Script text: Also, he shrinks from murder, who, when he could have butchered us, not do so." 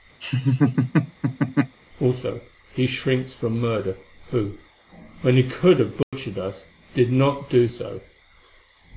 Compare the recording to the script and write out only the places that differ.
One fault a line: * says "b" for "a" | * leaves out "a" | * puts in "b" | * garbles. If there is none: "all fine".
* puts in "did"